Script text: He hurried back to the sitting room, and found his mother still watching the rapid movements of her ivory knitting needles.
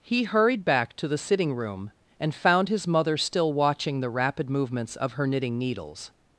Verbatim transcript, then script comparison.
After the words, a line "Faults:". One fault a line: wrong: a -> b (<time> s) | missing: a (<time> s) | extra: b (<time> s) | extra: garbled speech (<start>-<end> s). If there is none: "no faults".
He hurried back to the sitting room, and found his mother still watching the rapid movements of her knitting needles.
Faults:
missing: ivory (5.3 s)